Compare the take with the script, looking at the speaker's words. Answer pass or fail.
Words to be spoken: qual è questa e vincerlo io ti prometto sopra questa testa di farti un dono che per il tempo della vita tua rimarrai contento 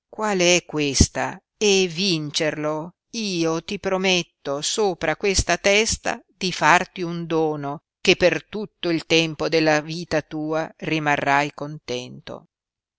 fail